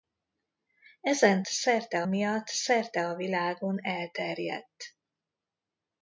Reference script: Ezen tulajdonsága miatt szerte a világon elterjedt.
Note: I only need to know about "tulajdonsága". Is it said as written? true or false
false